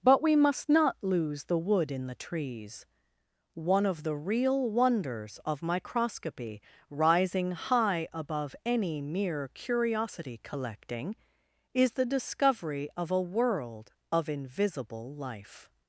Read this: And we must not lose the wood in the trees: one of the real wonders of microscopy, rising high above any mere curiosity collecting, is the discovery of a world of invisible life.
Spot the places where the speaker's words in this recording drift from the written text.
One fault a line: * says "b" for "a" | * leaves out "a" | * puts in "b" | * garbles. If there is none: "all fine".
* says "But" for "And"